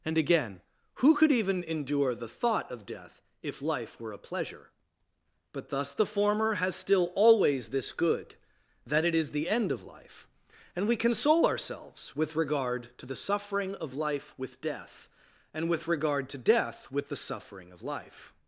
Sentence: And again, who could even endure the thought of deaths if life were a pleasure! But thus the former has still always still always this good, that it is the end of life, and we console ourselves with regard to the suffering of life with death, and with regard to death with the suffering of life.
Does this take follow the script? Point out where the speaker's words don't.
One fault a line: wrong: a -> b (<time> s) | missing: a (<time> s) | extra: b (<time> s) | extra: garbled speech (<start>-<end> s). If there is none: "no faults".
wrong: deaths -> death (2.9 s)
missing: still always (7.7 s)